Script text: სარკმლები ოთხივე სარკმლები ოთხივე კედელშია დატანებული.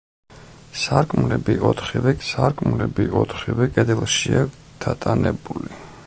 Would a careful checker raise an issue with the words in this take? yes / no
no